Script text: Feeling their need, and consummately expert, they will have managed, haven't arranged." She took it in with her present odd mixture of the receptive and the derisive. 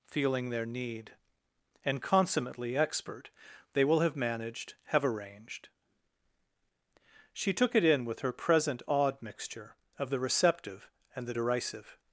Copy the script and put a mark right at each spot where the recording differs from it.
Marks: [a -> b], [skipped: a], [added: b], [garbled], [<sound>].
Feeling their need, and consummately expert, they will have managed, [haven't -> have] arranged." She took it in with her present odd mixture of the receptive and the derisive.